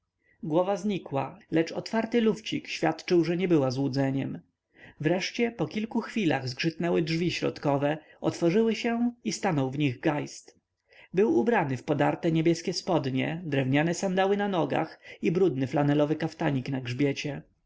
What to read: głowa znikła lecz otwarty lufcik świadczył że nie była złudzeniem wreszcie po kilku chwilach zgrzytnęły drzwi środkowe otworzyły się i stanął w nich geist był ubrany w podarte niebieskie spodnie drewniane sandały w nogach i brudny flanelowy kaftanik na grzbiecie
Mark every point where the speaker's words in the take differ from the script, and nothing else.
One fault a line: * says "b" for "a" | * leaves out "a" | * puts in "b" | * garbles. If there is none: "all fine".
* says "na" for "w"